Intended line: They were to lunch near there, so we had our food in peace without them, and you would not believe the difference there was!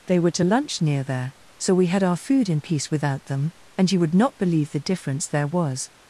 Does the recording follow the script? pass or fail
pass